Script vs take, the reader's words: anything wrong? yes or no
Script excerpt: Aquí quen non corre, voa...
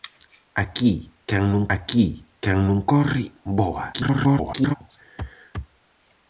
yes